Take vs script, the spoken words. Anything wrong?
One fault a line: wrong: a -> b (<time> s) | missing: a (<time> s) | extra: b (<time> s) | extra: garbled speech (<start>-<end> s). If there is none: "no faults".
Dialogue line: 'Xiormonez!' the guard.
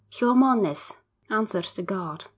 extra: answered (1.3 s)